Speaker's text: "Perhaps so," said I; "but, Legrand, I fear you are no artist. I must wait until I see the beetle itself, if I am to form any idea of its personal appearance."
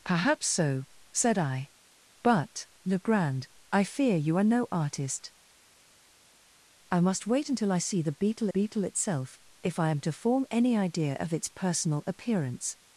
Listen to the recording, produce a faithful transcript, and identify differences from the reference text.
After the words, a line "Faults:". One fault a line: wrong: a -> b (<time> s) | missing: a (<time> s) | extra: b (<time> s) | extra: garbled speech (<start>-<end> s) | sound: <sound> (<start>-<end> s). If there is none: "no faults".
"Perhaps so," said I; "but, Legrand, I fear you are no artist. I must wait until I see the beetle beetle itself, if I am to form any idea of its personal appearance."
Faults:
extra: beetle (8.5 s)